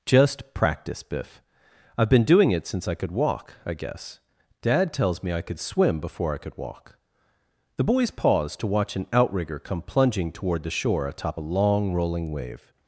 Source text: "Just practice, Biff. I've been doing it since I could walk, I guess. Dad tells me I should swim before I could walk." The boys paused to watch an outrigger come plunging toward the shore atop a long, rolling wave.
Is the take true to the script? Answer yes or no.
no